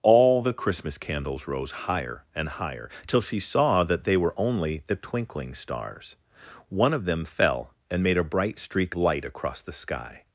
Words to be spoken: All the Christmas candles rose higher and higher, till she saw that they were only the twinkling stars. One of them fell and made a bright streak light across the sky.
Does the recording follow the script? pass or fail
pass